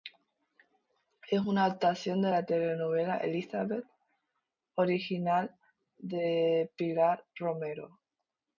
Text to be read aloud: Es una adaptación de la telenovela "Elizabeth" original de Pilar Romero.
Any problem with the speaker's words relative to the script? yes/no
no